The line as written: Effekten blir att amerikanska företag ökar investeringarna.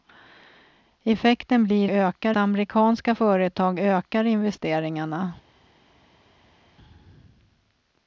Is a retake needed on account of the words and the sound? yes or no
yes